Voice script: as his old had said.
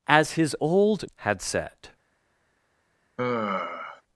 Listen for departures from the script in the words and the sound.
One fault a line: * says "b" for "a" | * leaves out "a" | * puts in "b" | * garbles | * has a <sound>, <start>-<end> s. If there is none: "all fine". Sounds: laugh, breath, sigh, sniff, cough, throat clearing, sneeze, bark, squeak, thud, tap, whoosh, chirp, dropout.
* has a sigh, 3.2-4.0 s